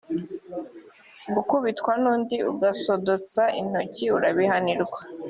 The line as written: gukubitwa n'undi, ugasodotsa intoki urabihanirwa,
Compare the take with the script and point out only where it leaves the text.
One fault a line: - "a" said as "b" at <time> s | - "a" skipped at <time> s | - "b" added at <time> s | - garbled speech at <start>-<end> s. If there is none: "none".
none